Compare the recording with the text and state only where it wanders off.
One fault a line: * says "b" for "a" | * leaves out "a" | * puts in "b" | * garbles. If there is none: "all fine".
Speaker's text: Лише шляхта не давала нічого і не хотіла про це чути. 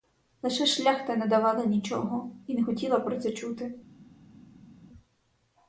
all fine